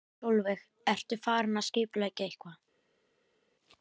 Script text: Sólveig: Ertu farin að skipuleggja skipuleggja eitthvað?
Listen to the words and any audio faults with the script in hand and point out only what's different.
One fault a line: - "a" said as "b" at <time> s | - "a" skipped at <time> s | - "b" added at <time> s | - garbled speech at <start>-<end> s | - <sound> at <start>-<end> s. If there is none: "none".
- "skipuleggja" skipped at 2.3 s